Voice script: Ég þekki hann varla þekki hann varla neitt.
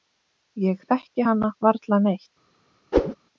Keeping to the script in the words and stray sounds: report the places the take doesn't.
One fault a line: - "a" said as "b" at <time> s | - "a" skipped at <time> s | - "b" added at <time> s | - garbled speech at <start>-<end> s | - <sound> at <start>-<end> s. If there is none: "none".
- "þekki hann varla" skipped at 2.0 s
- whoosh at 2.9-3.1 s